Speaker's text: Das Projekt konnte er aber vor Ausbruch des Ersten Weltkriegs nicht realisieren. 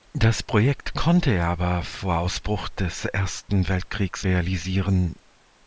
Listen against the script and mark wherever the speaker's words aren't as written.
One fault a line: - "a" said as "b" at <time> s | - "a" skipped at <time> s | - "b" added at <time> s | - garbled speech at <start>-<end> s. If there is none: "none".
- "nicht" skipped at 4.3 s